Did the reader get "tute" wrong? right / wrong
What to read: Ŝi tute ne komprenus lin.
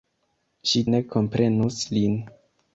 wrong